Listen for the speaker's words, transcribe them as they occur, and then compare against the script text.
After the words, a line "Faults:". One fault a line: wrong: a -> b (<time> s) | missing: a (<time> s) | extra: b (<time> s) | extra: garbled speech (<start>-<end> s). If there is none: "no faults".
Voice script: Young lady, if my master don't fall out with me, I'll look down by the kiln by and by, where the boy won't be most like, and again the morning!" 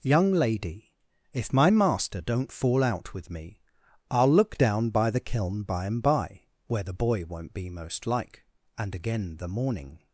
Young lady, if my master don't fall out with me, I'll look down by the kiln by and by, where the boy won't be most like, and again the morning!"
Faults:
no faults